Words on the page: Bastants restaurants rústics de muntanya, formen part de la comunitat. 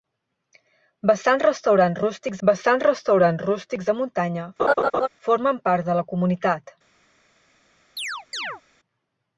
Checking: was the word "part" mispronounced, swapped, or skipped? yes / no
no